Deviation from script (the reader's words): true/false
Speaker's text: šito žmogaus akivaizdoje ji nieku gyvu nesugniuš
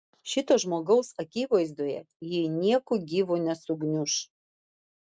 false